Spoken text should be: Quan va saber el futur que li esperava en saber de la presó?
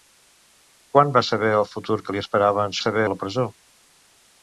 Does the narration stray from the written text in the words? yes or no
no